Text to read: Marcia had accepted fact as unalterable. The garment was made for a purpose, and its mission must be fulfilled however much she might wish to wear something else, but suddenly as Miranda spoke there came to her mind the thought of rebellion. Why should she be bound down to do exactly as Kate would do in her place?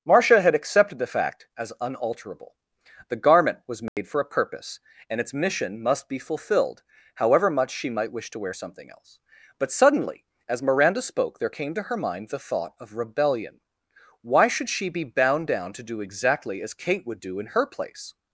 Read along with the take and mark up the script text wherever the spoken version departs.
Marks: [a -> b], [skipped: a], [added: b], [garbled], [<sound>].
Marcia had accepted [added: the] fact as unalterable. The garment was made [dropout] for a purpose, and its mission must be fulfilled however much she might wish to wear something else, but suddenly as Miranda spoke there came to her mind the thought of rebellion. Why should she be bound down to do exactly as Kate would do in her place?